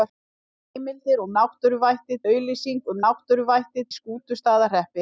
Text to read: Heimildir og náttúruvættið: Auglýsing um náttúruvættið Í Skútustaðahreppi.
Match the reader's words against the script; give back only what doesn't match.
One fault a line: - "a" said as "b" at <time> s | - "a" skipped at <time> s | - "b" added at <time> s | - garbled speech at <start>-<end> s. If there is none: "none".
none